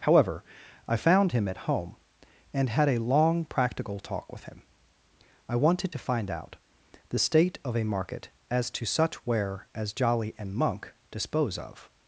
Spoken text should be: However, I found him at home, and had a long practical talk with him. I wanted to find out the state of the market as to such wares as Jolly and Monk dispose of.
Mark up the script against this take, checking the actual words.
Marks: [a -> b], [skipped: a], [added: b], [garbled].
However, I found him at home, and had a long practical talk with him. I wanted to find out the state of [the -> a] market as to such [wares -> ware] as Jolly and Monk dispose of.